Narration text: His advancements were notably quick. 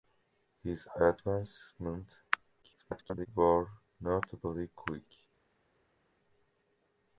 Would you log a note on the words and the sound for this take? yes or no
yes